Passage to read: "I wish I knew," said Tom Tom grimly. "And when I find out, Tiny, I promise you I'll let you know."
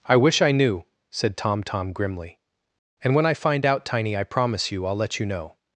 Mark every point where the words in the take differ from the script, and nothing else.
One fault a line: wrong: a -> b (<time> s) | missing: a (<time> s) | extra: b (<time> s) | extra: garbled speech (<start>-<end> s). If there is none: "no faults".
no faults